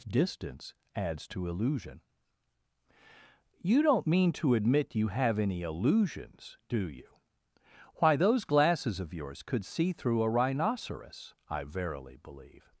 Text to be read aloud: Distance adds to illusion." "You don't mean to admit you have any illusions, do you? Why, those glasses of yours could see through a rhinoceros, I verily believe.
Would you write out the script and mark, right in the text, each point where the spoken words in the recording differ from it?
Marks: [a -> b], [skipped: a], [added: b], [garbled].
Distance adds to illusion." "You don't mean to admit you have any illusions, do you? Why, those glasses of yours could see through a rhinoceros, I verily believe.